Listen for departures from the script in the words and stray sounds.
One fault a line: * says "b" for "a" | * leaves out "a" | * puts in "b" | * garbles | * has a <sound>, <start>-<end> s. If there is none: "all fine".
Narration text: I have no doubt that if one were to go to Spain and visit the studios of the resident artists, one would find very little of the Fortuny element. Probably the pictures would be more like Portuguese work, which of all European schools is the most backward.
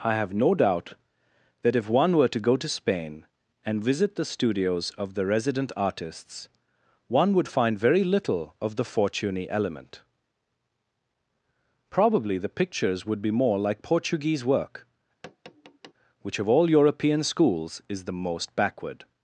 * has a tap, 15.2-15.9 s